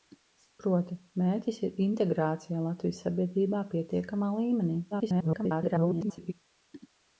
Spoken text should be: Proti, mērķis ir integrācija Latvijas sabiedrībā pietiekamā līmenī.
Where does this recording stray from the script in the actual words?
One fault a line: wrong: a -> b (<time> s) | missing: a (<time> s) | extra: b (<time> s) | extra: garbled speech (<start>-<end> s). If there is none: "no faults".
extra: garbled speech (4.9-6.3 s)